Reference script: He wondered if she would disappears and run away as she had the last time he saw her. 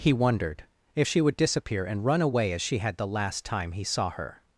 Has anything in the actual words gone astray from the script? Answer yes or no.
yes